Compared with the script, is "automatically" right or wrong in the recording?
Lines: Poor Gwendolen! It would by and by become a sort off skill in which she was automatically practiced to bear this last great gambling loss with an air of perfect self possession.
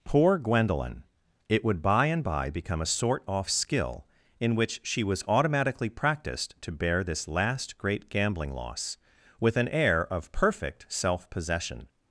right